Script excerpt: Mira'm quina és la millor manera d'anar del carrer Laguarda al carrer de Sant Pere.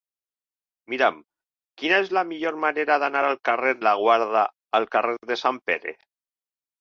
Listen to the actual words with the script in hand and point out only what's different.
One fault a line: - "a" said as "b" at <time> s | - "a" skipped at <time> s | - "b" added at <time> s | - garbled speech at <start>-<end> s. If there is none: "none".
none